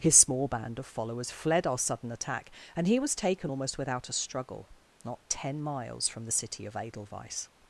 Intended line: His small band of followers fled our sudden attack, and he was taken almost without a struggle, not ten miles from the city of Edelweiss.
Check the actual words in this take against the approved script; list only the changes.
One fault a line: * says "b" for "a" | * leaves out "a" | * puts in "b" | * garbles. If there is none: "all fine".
all fine